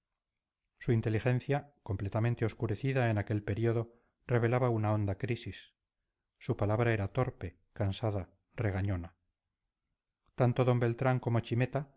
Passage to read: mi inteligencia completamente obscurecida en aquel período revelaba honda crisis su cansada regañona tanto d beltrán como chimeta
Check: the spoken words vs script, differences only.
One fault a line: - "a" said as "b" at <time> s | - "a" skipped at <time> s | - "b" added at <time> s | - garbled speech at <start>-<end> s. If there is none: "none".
- "mi" said as "su" at 0.8 s
- "una" added at 4.7 s
- "palabra era torpe" added at 6.6 s